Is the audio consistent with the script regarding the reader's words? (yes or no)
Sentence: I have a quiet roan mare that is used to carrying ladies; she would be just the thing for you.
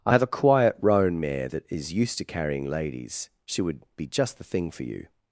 yes